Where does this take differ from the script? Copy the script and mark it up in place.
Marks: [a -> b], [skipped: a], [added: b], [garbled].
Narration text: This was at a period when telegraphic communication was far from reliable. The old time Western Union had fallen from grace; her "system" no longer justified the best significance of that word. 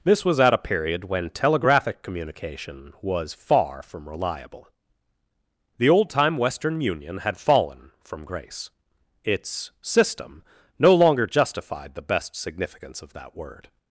This was at a period when telegraphic communication was far from reliable. The old time Western Union had fallen from grace; [her -> its] "system" no longer justified the best significance of that word.